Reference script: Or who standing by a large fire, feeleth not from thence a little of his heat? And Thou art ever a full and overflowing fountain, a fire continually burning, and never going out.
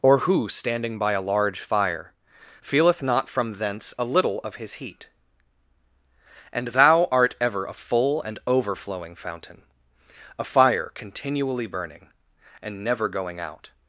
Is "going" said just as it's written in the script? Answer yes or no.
yes